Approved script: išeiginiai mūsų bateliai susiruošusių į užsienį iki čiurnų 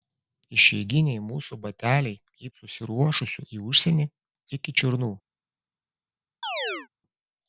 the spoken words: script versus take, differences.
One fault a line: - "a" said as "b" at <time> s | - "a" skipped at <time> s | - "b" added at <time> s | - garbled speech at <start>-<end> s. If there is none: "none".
none